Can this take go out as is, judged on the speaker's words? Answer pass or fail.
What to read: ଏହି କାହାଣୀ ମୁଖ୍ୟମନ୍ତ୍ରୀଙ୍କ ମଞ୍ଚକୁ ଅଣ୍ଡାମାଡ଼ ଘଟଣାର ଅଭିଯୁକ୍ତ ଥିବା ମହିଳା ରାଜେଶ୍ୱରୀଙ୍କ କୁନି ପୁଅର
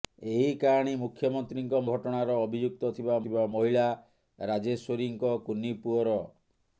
fail